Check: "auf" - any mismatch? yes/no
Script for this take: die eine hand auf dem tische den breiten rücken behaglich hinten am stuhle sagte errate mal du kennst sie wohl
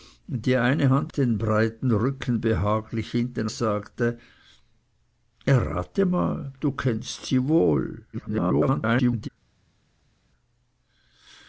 yes